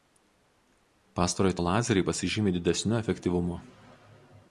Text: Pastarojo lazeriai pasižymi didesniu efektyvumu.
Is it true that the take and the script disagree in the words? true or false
false